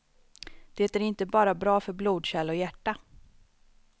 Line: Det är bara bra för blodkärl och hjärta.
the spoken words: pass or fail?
fail